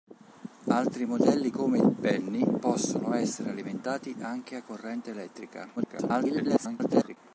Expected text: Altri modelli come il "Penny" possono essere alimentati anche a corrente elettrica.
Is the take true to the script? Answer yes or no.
no